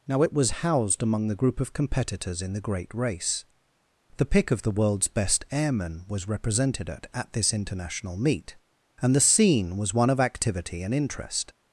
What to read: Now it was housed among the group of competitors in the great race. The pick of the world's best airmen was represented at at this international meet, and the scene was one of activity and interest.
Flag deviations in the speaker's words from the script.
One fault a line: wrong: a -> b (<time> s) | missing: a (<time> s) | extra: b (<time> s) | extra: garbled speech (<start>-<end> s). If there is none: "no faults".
no faults